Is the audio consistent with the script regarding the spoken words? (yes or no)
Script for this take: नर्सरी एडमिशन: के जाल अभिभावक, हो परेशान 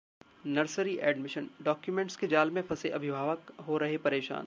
no